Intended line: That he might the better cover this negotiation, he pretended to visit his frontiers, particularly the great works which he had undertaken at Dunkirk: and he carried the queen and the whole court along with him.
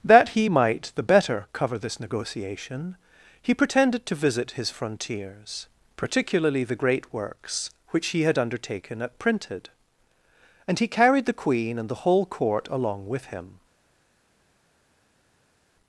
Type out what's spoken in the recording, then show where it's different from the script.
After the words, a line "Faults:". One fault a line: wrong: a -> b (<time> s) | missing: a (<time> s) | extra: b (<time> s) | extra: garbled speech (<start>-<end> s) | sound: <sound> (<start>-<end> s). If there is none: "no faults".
That he might the better cover this negotiation, he pretended to visit his frontiers, particularly the great works which he had undertaken at Printed: and he carried the queen and the whole court along with him.
Faults:
wrong: Dunkirk -> Printed (9.2 s)